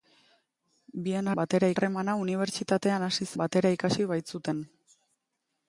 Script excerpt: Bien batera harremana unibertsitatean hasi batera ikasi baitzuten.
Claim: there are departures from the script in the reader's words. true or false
false